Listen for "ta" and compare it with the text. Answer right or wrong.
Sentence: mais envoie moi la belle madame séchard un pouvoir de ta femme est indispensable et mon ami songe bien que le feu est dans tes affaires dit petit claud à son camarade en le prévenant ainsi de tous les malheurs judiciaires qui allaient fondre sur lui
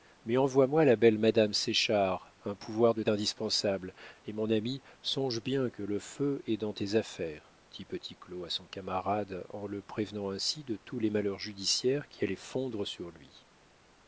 wrong